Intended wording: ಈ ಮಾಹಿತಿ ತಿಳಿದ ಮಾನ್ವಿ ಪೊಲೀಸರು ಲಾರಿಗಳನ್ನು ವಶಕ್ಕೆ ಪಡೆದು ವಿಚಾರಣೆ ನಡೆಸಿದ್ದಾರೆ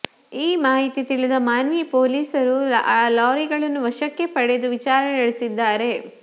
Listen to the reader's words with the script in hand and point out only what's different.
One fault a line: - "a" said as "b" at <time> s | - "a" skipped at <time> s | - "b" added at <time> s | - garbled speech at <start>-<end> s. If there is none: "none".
none